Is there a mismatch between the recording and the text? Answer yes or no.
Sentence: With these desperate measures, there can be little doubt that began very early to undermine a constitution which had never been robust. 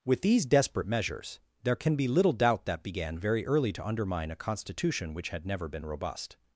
no